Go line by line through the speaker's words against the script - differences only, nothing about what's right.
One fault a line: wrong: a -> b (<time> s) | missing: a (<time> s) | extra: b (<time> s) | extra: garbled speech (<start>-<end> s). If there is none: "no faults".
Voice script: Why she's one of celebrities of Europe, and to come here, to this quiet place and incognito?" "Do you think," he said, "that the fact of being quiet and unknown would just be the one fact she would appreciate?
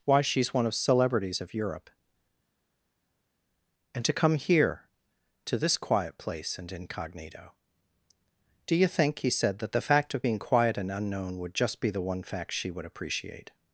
no faults